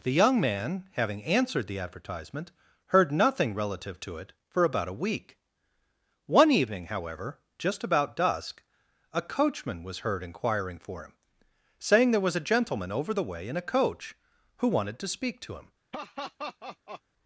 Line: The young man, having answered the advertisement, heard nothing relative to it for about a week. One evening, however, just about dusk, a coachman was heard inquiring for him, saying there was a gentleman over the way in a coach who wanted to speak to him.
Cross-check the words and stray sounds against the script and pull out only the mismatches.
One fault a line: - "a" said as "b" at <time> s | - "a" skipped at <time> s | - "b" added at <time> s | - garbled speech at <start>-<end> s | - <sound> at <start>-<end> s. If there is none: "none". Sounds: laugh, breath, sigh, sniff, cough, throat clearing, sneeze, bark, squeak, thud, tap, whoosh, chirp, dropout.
- laugh at 15.9-17.0 s